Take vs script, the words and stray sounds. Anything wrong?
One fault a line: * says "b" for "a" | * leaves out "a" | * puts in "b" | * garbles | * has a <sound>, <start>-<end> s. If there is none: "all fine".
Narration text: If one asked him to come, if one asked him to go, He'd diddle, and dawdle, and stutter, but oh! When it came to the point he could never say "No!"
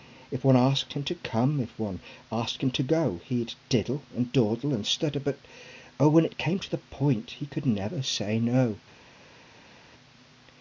all fine